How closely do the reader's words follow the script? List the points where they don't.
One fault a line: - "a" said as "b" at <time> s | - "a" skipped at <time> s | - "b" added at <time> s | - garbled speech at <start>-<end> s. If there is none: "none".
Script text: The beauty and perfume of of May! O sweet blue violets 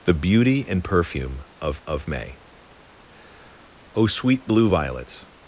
none